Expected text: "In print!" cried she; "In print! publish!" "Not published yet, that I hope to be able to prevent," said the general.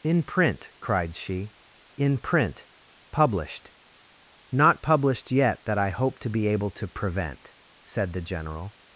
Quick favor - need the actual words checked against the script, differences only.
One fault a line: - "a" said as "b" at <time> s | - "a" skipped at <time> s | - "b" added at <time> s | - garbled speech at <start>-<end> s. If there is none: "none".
- "publish" said as "published" at 3.1 s